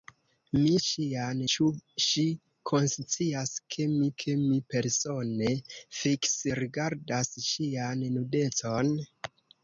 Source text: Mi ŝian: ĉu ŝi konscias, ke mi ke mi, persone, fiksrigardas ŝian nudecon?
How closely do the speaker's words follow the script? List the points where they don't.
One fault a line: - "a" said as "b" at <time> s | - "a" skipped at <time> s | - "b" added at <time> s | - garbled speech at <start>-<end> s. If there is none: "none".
none